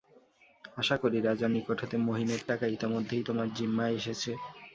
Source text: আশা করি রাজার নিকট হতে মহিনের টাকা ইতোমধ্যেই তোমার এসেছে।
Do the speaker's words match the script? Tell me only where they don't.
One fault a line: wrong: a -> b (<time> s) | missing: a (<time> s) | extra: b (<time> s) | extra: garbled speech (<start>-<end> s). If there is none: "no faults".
extra: জিম্মায় (3.6 s)